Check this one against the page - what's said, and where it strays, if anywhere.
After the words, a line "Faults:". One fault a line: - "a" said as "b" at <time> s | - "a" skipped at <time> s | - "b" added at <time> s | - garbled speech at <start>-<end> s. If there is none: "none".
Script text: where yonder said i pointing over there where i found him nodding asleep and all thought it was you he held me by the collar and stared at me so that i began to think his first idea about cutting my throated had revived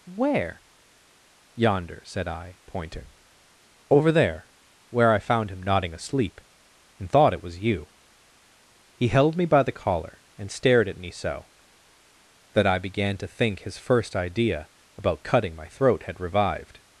where yonder said i pointing over there where i found him nodding asleep and thought it was you he held me by the collar and stared at me so that i began to think his first idea about cutting my throat had revived
Faults:
- "all" skipped at 7.1 s
- "throated" said as "throat" at 15.7 s